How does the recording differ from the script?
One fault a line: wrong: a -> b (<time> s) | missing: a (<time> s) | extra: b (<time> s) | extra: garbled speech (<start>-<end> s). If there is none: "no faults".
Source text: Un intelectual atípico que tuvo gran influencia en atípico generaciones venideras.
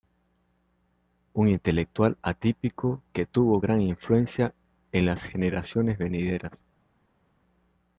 wrong: atípico -> las (5.0 s)